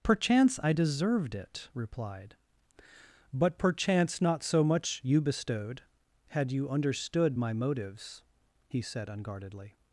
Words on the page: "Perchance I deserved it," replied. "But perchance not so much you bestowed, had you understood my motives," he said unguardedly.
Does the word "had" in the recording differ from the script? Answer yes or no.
no